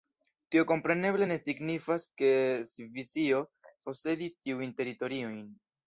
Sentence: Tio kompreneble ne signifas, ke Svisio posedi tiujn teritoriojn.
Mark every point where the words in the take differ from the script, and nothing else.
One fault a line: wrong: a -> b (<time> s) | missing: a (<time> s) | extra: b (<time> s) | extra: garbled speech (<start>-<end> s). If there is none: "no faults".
no faults